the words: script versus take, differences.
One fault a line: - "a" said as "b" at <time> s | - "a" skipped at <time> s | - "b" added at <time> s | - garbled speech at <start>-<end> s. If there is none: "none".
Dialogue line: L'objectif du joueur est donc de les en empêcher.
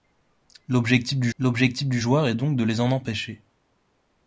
- "l'objectif du" added at 1.4 s